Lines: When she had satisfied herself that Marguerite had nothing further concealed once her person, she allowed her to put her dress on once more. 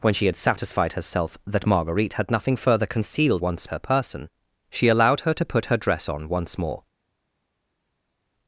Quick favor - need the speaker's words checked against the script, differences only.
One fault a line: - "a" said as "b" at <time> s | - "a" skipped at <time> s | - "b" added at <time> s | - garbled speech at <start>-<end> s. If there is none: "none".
none